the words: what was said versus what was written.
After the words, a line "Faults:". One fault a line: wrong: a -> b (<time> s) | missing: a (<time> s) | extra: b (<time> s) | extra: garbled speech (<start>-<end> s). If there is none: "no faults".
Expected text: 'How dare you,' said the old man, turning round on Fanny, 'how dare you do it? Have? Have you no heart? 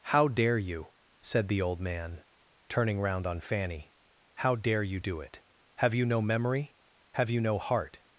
'How dare you,' said the old man, turning round on Fanny, 'how dare you do it? Have you no memory? Have you no heart?
Faults:
extra: you no memory (5.9 s)